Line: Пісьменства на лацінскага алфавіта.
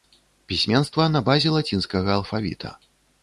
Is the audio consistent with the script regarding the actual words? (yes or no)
no